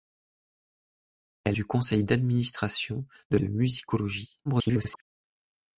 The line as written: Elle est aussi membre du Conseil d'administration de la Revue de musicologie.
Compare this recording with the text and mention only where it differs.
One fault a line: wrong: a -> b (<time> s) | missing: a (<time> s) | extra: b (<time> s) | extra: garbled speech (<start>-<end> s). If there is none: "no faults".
missing: est aussi membre (1.6 s)
missing: la Revue (3.4 s)
extra: garbled speech (4.4-5.0 s)